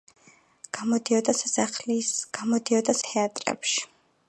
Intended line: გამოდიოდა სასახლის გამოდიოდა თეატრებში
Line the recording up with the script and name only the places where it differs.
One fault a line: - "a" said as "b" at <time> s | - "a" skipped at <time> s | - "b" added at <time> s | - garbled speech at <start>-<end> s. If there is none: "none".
none